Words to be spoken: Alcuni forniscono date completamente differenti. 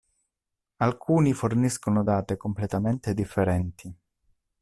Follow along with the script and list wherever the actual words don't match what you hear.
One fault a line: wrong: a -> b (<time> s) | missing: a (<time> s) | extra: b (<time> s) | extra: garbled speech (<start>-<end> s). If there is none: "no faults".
no faults